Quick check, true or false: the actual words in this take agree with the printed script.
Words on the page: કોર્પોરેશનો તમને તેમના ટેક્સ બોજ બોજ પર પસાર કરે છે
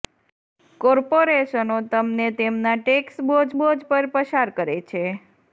true